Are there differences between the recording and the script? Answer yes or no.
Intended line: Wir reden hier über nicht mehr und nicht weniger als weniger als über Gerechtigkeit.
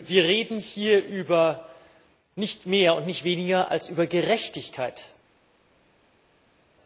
yes